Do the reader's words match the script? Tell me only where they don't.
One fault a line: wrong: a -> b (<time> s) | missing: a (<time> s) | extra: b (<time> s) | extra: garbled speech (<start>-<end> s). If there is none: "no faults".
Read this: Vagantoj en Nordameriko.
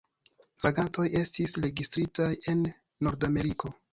extra: estis registritaj (1.2 s)